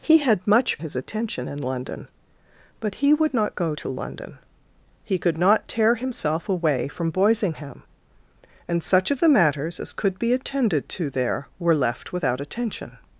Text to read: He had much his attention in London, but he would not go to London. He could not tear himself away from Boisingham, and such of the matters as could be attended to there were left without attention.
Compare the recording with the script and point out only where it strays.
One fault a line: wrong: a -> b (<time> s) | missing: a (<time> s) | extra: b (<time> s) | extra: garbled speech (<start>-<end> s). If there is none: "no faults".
no faults